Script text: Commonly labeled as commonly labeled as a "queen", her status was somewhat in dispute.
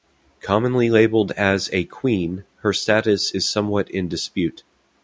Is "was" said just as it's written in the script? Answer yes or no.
no